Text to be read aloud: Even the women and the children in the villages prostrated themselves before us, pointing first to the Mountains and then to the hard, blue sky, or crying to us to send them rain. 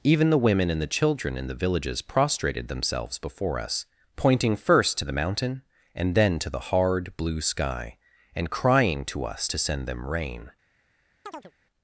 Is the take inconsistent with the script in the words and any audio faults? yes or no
yes